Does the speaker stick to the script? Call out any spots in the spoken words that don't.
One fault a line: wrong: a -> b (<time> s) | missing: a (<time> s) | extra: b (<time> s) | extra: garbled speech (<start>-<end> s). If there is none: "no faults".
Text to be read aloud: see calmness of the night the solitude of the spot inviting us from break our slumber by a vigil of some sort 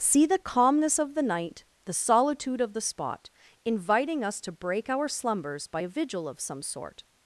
extra: the (0.2 s)
wrong: from -> to (4.4 s)
wrong: slumber -> slumbers (5.1 s)